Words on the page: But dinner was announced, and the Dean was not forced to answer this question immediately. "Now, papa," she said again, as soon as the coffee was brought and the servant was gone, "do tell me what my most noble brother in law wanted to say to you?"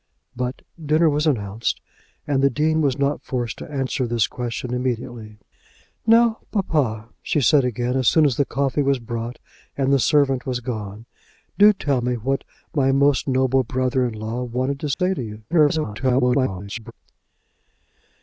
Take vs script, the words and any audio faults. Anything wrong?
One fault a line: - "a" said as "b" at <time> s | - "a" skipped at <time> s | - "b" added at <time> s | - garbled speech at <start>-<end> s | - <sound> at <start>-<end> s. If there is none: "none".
- dropout at 14.9-15.0 s
- garbled speech at 15.5-16.9 s